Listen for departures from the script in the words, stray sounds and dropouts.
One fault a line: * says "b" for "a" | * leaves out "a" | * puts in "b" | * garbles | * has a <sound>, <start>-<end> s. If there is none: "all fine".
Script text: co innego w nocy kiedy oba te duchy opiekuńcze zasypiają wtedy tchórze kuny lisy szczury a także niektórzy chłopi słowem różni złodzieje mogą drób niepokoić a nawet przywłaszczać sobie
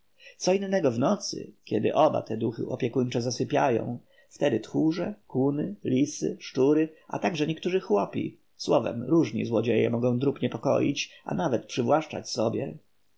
all fine